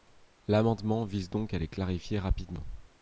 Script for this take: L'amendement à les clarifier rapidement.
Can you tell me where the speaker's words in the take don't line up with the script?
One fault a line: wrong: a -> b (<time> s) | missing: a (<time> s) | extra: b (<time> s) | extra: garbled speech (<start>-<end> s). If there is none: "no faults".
extra: vise donc (1.1 s)